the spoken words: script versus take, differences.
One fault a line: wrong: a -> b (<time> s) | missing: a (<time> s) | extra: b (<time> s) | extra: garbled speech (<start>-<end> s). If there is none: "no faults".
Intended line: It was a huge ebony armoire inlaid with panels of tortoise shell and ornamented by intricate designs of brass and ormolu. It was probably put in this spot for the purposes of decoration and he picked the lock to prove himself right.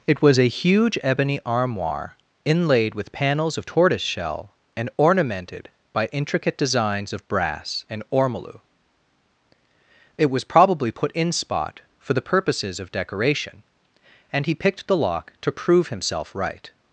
missing: this (11.3 s)